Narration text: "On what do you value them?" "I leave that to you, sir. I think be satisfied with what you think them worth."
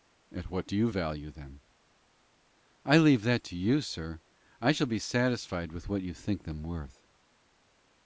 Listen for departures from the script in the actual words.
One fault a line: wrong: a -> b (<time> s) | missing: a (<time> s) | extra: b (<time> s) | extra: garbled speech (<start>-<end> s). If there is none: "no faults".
wrong: On -> At (0.3 s)
wrong: think -> shall (4.7 s)